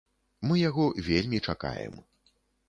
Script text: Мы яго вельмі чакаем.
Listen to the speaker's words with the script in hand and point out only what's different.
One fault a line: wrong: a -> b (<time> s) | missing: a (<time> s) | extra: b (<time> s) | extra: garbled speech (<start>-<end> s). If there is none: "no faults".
no faults